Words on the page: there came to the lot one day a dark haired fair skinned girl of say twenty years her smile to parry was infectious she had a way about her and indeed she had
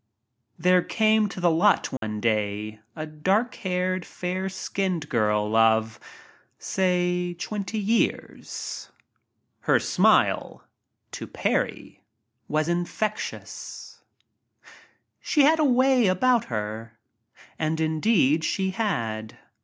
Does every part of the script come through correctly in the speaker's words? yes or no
yes